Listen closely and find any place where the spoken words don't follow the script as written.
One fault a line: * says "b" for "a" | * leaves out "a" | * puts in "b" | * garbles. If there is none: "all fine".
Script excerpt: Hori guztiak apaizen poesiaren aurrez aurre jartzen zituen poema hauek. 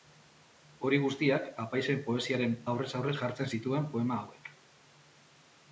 all fine